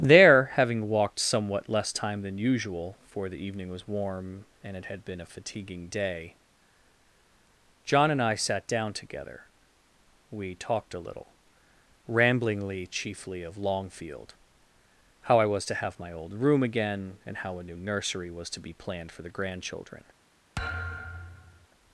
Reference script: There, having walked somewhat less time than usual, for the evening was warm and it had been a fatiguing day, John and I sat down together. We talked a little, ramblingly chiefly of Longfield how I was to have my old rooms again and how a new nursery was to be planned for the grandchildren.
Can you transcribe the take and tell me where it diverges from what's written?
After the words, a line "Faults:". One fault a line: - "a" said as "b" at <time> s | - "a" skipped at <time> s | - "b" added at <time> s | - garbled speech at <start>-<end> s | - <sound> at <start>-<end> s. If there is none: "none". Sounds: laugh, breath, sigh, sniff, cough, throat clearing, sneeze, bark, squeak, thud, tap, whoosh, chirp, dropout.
There, having walked somewhat less time than usual, for the evening was warm and it had been a fatiguing day, John and I sat down together. We talked a little, ramblingly chiefly of Longfield how I was to have my old room again and how a new nursery was to be planned for the grandchildren.
Faults:
- "rooms" said as "room" at 16.3 s
- thud at 20.6-21.7 s